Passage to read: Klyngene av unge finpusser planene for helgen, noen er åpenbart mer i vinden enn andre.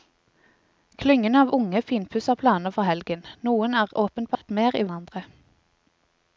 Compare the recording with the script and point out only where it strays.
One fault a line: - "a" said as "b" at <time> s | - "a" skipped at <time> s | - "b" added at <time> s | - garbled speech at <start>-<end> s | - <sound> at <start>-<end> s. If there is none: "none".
- dropout at 4.3-4.4 s
- "vinden" skipped at 4.9 s